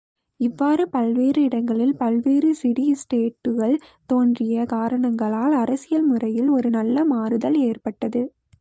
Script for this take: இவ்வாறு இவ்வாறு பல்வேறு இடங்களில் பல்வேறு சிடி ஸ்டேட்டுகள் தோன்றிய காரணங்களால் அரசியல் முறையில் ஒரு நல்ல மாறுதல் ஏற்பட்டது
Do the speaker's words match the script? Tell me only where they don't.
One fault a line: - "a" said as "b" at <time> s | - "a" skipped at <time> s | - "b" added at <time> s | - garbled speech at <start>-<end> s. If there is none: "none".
- "இவ்வாறு" skipped at 0.8 s